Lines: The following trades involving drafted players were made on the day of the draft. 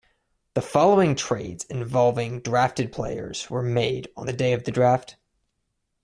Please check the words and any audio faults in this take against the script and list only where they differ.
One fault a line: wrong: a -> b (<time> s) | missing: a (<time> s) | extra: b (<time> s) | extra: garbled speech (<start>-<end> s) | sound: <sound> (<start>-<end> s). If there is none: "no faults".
no faults